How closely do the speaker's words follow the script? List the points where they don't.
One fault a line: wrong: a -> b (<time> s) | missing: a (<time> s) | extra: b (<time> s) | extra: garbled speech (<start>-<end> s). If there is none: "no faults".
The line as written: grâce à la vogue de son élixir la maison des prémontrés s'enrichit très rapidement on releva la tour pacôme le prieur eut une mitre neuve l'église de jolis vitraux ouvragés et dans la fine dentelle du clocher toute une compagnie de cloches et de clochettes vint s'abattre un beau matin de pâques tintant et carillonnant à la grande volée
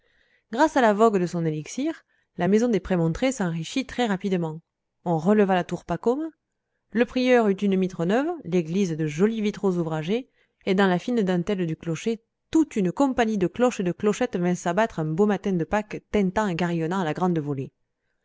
no faults